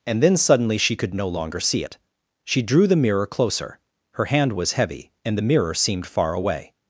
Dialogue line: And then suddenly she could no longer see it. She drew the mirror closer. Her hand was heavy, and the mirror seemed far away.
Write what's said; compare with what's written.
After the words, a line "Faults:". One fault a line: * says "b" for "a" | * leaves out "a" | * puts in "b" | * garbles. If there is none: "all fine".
And then suddenly she could no longer see it. She drew the mirror closer. Her hand was heavy, and the mirror seemed far away.
Faults:
all fine